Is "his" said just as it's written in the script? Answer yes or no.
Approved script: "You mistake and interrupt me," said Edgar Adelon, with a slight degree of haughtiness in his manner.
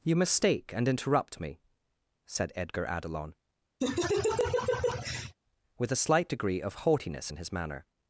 yes